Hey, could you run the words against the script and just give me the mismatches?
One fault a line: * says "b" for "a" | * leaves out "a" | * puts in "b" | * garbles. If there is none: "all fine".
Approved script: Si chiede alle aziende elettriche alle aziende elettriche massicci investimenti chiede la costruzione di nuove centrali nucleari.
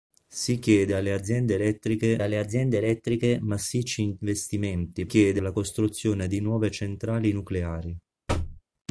all fine